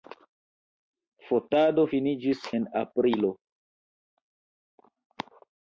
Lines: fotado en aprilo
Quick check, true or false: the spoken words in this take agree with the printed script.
false